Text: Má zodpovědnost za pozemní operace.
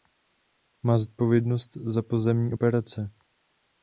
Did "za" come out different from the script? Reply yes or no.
no